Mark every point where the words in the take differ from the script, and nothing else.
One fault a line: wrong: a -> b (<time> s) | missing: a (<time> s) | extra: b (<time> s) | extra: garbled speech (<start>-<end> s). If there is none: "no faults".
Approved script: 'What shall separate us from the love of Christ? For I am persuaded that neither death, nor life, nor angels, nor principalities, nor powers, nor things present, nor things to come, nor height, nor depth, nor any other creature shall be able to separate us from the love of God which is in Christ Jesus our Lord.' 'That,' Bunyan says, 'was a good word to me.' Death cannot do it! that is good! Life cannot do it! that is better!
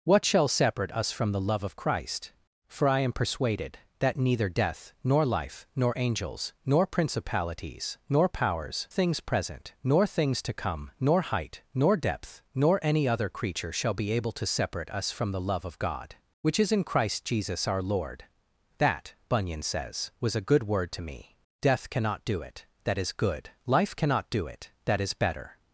missing: nor (8.9 s)